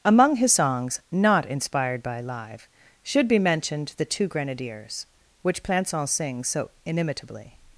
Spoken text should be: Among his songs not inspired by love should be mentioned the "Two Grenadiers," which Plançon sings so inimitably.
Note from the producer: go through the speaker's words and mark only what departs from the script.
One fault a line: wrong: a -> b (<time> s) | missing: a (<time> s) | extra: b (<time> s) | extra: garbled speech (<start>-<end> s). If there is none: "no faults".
wrong: love -> live (2.2 s)